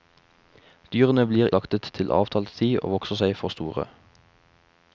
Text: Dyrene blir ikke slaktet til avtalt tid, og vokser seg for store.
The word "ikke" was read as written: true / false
false